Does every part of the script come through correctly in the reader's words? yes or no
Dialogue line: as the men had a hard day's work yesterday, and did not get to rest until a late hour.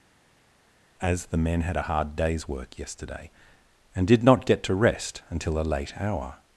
yes